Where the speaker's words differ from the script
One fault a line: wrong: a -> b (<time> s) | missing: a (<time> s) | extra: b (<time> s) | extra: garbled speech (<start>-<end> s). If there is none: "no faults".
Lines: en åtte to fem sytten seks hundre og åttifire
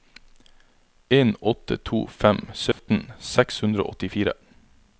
no faults